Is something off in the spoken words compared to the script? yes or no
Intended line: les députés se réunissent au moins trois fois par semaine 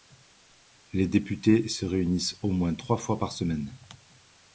no